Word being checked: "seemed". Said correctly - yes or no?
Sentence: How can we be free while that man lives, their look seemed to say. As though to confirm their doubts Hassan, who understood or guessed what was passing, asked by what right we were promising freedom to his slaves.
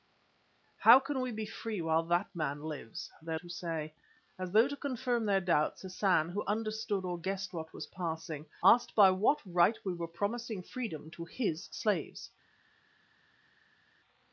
no